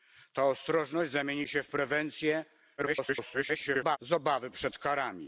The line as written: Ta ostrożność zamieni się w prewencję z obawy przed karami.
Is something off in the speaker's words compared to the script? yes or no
yes